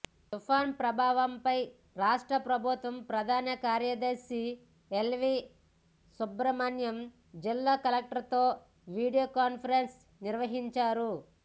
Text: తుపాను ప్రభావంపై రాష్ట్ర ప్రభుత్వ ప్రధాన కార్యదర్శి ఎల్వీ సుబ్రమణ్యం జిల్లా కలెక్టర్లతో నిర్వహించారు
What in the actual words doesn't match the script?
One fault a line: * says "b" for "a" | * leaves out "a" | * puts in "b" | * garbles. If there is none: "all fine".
* puts in "వీడియో కాన్ఫరెన్స్"